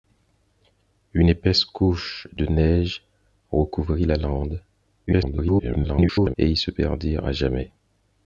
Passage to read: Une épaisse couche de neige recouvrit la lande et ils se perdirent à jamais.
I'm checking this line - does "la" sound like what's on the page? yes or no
yes